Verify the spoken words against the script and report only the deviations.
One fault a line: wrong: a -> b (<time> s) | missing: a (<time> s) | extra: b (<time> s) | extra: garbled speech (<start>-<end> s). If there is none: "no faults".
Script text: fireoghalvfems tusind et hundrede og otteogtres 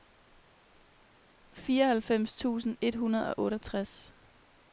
no faults